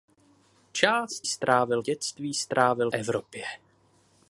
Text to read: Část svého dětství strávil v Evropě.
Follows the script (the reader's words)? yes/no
no